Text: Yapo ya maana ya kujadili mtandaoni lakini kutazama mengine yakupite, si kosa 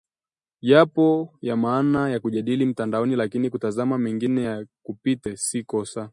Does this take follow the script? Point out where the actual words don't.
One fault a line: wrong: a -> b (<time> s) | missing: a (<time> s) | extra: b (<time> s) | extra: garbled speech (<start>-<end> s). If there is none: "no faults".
no faults